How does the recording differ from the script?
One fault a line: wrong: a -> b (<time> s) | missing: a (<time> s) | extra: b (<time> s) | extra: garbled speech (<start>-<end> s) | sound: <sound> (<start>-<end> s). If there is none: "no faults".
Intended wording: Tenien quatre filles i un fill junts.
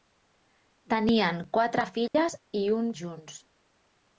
sound: dropout (2.1-2.1 s)
missing: fill (2.9 s)